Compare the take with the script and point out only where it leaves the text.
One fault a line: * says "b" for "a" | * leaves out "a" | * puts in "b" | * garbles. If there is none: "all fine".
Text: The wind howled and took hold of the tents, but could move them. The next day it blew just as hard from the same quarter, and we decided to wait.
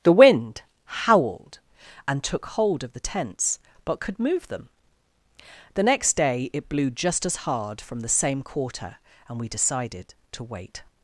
all fine